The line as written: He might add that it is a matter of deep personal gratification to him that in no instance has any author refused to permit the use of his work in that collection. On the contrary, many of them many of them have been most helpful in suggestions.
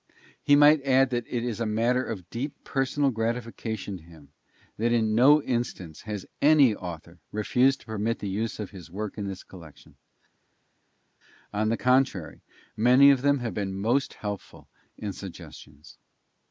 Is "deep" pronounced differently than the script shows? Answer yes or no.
no